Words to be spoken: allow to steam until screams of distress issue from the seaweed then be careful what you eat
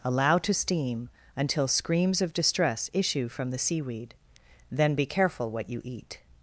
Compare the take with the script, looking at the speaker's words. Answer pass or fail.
pass